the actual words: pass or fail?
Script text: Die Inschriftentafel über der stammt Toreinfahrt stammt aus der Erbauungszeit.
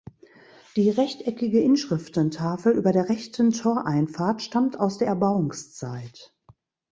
fail